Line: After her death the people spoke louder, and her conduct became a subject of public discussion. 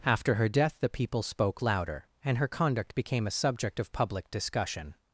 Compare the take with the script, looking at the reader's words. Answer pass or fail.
pass